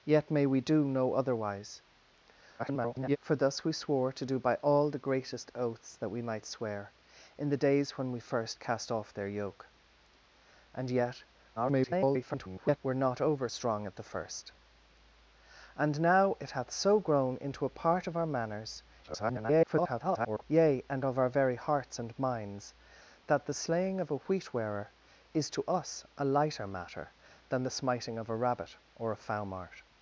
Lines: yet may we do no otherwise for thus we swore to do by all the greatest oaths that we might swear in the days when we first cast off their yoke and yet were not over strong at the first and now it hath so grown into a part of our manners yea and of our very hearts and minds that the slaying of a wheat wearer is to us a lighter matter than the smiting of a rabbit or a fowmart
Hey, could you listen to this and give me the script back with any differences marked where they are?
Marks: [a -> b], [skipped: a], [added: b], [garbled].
yet may we do no otherwise [garbled] for thus we swore to do by all the greatest oaths that we might swear in the days when we first cast off their yoke and yet [garbled] were not over strong at the first and now it hath so grown into a part of our manners [garbled] yea and of our very hearts and minds that the slaying of a wheat wearer is to us a lighter matter than the smiting of a rabbit or a fowmart